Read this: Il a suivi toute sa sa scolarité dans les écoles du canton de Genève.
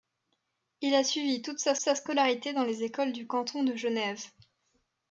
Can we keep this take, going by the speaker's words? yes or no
yes